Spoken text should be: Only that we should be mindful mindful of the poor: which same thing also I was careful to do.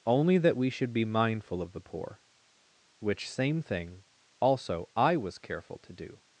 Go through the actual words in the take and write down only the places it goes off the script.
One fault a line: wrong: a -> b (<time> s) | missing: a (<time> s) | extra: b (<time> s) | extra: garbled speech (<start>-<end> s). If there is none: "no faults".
missing: mindful (1.6 s)